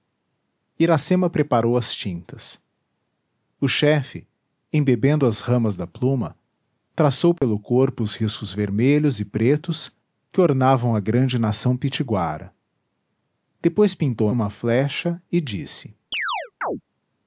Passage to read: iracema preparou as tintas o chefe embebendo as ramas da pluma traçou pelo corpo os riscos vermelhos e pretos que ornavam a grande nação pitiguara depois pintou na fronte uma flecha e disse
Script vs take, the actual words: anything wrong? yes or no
yes